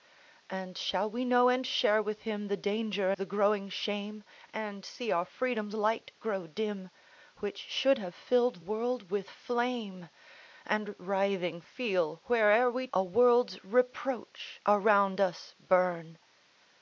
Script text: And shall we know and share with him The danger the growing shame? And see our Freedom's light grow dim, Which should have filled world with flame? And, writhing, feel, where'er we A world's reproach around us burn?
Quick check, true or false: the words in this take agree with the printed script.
true